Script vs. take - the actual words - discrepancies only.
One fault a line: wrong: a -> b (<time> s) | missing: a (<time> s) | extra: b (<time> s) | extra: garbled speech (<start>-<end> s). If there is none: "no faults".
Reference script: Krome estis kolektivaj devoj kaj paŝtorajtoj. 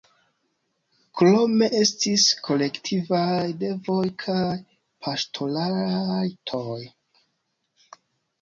no faults